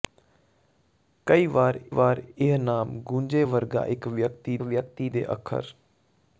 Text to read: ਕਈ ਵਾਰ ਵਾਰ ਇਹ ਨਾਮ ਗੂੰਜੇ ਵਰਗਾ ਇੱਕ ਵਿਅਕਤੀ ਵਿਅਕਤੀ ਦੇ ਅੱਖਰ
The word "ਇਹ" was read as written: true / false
true